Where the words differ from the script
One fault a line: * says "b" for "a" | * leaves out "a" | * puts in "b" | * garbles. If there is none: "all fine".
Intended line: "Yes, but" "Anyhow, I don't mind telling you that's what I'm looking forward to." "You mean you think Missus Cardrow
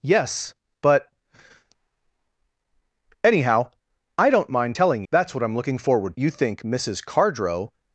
* leaves out "you"
* leaves out "to You mean"